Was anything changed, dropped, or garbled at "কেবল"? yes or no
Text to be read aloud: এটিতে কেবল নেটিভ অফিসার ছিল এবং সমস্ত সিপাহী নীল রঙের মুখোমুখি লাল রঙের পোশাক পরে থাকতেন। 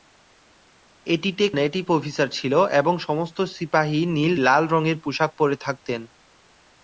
yes